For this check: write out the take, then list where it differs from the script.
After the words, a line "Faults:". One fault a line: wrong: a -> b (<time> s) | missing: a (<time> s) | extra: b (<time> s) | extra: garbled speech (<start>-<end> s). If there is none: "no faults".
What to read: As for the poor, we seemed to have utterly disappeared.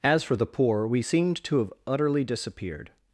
As for the poor, we seemed to have utterly disappeared.
Faults:
no faults